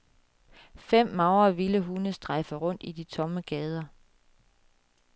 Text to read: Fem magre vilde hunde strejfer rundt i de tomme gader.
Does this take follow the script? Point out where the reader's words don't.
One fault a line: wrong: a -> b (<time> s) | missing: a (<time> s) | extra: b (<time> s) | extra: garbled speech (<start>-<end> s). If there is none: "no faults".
no faults